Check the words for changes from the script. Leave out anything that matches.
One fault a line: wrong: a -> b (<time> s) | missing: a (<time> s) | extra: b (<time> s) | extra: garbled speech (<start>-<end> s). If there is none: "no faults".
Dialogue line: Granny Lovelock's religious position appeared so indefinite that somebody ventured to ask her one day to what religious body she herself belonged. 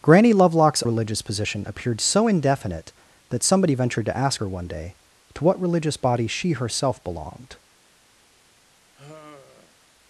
no faults